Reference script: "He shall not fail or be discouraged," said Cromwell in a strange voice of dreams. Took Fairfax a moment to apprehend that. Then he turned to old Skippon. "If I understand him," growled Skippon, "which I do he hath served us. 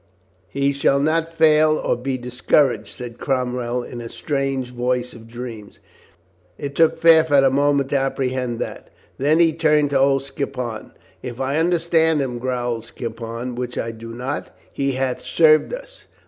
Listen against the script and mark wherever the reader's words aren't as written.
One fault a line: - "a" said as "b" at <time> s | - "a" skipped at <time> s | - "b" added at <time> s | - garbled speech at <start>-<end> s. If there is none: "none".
- "It" added at 6.6 s
- "not" added at 14.1 s